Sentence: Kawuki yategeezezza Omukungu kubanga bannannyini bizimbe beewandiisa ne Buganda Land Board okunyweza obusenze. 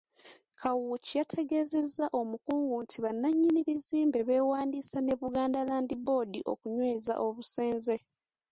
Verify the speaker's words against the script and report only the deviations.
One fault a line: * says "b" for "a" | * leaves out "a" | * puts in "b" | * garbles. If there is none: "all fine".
* says "nti" for "kubanga"